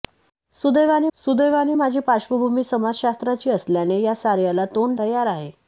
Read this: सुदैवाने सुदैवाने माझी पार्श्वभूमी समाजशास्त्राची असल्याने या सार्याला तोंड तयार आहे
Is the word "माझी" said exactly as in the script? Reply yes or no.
yes